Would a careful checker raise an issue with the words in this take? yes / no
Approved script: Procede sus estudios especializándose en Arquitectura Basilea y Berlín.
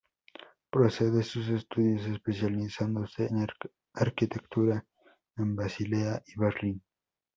yes